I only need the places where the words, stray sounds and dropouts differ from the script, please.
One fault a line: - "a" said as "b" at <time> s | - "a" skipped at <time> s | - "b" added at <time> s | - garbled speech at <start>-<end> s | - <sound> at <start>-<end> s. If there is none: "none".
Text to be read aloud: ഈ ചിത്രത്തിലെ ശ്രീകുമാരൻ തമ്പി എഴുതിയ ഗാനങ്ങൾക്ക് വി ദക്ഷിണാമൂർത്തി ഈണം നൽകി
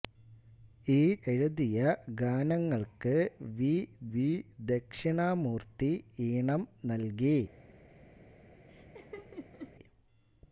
- "ചിത്രത്തിലെ ശ്രീകുമാരൻ തമ്പി" skipped at 1.0 s
- "വി" added at 4.1 s
- laugh at 8.7-9.7 s